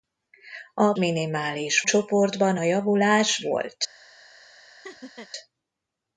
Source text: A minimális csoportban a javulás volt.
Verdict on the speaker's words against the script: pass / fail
pass